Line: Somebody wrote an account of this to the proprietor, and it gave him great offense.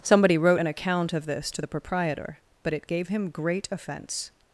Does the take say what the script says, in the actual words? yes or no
no